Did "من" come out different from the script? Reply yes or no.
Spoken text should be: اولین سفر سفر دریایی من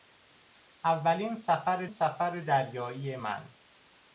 no